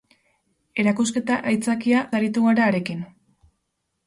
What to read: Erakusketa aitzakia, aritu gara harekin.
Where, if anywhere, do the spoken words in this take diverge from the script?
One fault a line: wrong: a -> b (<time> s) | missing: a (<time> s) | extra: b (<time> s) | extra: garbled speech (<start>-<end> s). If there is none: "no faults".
no faults